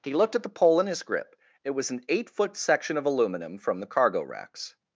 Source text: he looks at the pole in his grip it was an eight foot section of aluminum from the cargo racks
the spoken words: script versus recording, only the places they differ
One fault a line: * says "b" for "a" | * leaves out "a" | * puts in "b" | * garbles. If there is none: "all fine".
* says "looked" for "looks"